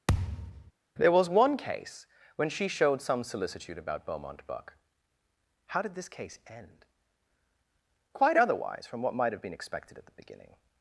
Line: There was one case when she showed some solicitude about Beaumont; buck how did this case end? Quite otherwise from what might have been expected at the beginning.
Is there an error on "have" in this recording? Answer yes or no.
no